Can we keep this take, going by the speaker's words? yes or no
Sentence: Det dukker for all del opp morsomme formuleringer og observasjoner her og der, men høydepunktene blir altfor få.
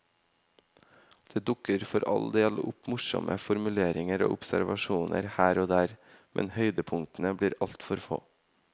yes